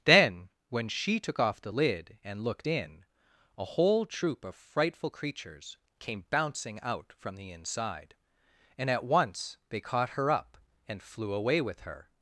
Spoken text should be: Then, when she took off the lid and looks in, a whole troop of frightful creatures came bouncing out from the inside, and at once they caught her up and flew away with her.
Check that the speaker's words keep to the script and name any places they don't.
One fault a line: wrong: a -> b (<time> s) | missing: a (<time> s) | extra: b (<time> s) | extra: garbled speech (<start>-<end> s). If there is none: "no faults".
wrong: looks -> looked (2.4 s)